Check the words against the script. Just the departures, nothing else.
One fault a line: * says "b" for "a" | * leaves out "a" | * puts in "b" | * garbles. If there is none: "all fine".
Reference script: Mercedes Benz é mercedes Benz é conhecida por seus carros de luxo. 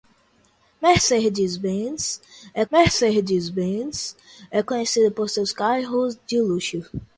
all fine